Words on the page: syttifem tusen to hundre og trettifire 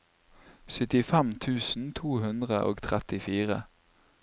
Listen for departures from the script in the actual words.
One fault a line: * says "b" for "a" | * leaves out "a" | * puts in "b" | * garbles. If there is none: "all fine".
all fine